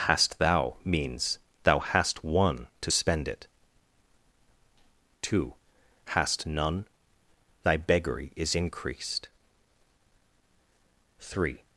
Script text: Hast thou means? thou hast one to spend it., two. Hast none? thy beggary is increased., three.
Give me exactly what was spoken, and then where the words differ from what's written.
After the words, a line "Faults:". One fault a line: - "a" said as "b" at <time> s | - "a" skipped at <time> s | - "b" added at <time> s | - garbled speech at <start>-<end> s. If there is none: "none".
Hast thou means? thou hast one to spend it., two. Hast none? thy beggary is increased., three.
Faults:
none